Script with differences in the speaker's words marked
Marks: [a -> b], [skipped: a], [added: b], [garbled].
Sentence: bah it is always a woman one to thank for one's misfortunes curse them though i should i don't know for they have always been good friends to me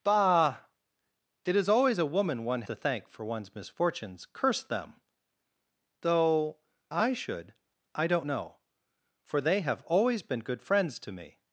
bah it is always a woman one to thank for one's misfortunes curse them though i should i don't know for they have always been good friends to me